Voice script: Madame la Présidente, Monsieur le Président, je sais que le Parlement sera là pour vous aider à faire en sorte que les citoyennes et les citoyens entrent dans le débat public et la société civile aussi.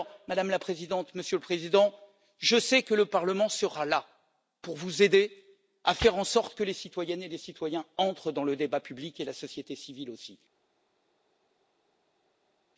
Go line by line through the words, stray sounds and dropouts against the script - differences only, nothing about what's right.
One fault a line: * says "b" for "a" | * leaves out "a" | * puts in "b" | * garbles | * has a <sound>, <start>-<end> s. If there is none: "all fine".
all fine